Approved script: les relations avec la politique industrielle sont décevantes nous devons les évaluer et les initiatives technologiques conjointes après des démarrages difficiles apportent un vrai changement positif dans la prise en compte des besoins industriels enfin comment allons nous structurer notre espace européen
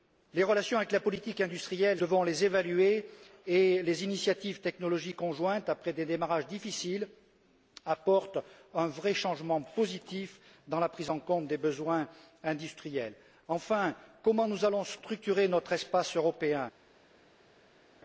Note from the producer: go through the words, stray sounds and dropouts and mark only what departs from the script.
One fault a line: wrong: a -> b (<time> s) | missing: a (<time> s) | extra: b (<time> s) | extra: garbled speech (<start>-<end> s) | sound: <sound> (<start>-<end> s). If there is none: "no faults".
missing: sont décevantes nous (2.0 s)